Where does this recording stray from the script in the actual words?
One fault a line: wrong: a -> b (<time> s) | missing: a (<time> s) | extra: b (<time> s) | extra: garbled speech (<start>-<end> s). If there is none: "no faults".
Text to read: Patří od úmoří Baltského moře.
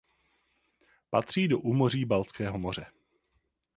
wrong: od -> do (1.5 s)